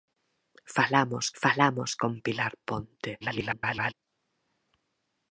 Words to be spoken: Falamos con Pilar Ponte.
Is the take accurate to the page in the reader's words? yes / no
no